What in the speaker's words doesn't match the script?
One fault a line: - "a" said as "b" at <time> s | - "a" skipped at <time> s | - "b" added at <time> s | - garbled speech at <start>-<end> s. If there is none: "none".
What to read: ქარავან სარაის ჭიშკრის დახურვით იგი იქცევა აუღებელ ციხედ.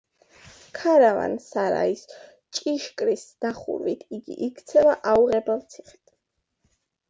none